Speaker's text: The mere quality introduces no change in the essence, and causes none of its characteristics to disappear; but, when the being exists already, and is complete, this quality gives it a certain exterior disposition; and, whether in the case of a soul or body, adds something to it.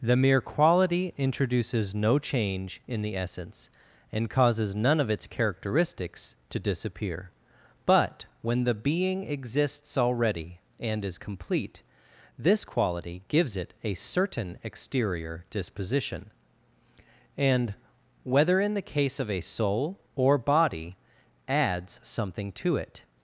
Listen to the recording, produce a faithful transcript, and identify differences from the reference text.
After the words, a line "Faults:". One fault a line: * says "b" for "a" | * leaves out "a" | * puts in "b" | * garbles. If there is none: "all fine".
The mere quality introduces no change in the essence, and causes none of its characteristics to disappear; but, when the being exists already, and is complete, this quality gives it a certain exterior disposition; and, whether in the case of a soul or body, adds something to it.
Faults:
all fine